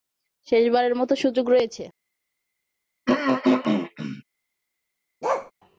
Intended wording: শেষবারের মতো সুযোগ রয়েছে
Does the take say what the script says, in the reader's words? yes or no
yes